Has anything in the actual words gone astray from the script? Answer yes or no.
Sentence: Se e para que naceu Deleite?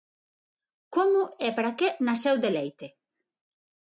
yes